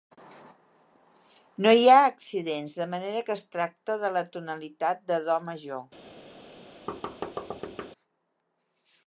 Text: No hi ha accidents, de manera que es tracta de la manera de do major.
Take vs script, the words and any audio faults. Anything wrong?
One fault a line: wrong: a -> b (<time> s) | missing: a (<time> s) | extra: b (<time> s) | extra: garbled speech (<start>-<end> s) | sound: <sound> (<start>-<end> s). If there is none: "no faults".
wrong: manera -> tonalitat (4.4 s)
sound: thud (6.9-7.9 s)